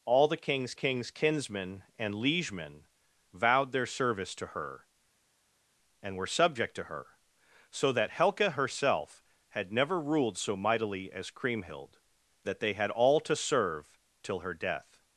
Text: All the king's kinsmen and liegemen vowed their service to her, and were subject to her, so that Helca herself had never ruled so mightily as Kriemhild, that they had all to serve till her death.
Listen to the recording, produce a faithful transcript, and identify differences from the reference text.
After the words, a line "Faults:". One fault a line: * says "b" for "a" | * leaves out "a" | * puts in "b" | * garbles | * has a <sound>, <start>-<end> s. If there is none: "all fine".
All the king's king's kinsmen and liegemen vowed their service to her, and were subject to her, so that Helca herself had never ruled so mightily as Kriemhild, that they had all to serve till her death.
Faults:
* puts in "king's"